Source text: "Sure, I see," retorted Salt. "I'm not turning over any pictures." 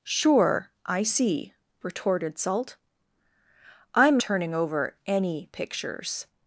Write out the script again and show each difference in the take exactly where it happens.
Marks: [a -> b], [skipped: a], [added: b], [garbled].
"Sure, I see," retorted Salt. "I'm [skipped: not] turning over any pictures."